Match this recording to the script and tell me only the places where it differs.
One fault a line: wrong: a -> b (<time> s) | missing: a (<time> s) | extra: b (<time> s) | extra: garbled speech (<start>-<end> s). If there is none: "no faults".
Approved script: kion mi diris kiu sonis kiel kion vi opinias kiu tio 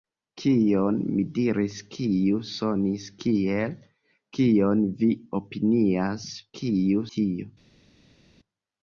no faults